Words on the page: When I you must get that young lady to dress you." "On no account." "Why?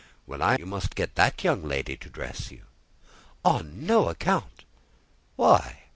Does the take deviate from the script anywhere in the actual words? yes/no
no